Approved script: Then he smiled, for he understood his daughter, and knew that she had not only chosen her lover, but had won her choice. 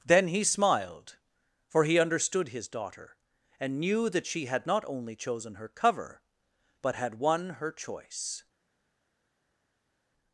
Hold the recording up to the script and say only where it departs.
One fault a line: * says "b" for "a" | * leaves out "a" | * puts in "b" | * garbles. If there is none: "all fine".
* says "cover" for "lover"